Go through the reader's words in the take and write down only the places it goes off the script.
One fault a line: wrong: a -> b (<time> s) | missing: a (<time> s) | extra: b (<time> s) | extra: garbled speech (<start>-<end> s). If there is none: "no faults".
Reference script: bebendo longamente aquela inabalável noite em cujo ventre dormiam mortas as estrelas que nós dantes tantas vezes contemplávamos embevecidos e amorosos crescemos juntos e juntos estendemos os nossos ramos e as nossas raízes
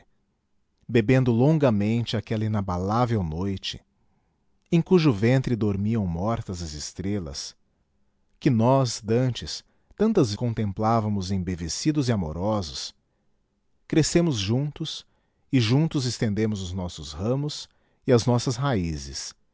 missing: vezes (10.3 s)